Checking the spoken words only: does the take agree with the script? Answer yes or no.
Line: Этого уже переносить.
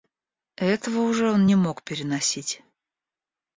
no